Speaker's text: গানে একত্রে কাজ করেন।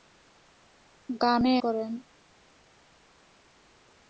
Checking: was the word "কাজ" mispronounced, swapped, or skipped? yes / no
yes